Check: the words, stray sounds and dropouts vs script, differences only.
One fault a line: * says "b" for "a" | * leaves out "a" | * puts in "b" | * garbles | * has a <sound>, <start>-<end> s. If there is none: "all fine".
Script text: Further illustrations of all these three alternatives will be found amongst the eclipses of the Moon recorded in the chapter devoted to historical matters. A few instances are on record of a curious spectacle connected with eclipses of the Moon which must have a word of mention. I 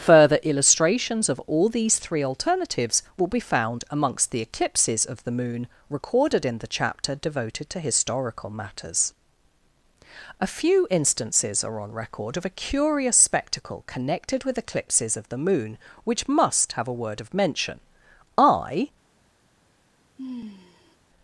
* has a sigh, 20.2-21.0 s